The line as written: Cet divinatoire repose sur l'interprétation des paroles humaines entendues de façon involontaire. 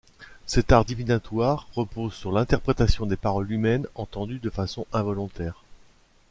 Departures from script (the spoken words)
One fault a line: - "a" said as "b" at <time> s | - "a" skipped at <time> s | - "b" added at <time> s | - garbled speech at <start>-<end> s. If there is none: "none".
- "art" added at 0.7 s